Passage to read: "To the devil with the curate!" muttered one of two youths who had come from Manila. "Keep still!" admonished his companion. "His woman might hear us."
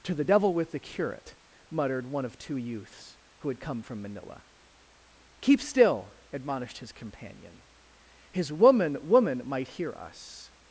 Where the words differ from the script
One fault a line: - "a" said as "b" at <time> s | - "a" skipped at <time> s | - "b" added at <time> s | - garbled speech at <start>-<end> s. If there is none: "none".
- "woman" added at 9.1 s